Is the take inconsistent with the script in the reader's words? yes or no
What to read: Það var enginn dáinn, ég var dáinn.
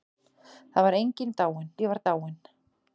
no